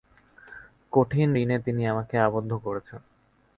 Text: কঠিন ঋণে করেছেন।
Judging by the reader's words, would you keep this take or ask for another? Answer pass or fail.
fail